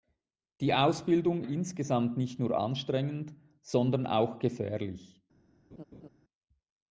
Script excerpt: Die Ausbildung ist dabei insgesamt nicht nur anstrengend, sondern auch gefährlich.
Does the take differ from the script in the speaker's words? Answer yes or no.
yes